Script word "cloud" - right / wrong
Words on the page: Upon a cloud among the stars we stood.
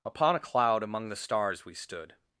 right